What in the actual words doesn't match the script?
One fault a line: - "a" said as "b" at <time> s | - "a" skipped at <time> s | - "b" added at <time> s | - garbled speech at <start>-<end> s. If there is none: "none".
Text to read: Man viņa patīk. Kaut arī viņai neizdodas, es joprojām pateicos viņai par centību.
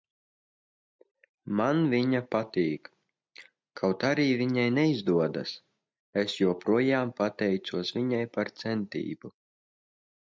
none